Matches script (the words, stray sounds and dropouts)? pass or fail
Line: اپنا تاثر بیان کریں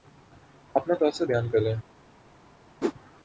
fail